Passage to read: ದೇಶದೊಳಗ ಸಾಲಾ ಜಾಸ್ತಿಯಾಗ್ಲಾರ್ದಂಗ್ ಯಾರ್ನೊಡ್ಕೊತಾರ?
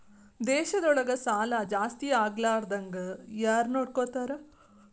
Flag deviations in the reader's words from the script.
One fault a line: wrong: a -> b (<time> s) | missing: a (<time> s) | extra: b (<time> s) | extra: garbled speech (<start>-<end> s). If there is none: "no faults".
no faults